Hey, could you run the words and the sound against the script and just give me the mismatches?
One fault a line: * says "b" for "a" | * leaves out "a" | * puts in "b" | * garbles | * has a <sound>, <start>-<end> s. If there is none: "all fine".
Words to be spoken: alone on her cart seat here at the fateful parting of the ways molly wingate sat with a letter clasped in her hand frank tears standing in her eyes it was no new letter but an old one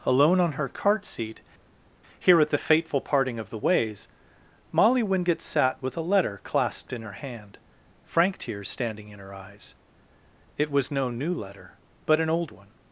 all fine